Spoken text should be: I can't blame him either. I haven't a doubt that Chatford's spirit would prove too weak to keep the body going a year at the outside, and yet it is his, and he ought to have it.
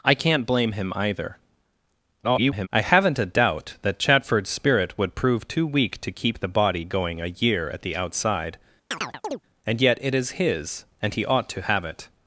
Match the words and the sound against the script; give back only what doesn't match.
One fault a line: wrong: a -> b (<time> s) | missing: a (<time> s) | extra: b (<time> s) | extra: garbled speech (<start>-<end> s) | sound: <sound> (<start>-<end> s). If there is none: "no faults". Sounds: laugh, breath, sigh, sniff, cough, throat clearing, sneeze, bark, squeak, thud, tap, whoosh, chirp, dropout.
extra: garbled speech (2.2-2.7 s)
sound: chirp (8.9-9.4 s)